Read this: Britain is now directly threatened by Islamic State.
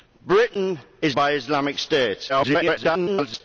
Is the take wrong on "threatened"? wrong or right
wrong